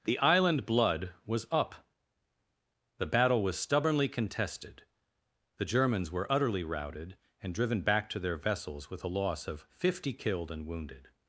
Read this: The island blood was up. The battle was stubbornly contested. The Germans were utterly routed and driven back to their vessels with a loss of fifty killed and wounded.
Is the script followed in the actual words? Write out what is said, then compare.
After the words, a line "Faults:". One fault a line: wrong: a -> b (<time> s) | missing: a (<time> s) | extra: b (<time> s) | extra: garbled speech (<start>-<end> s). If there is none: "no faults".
The island blood was up. The battle was stubbornly contested. The Germans were utterly routed and driven back to their vessels with a loss of fifty killed and wounded.
Faults:
no faults